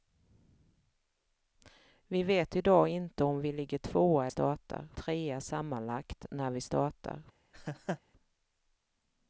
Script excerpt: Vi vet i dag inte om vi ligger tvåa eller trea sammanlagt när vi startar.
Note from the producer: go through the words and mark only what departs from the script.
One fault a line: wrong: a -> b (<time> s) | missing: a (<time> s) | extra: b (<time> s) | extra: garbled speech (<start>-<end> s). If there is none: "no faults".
wrong: eller -> startar (4.3 s)